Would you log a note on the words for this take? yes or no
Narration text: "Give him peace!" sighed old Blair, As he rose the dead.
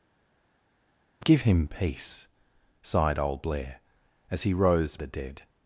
no